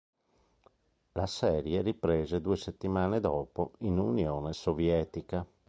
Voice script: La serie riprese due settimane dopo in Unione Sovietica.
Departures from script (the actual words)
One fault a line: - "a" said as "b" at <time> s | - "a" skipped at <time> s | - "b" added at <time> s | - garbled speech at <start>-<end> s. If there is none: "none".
none